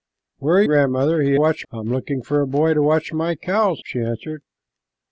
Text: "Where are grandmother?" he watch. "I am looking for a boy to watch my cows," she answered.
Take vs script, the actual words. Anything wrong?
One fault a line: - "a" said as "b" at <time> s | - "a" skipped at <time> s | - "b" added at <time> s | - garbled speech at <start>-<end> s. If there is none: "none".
none